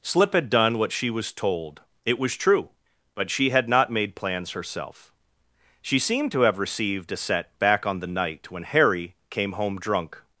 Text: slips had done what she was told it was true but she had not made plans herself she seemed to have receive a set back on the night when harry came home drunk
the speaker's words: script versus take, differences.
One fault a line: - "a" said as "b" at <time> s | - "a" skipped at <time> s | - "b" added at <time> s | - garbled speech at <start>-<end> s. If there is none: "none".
- "slips" said as "slip" at 0.0 s
- "receive" said as "received" at 6.6 s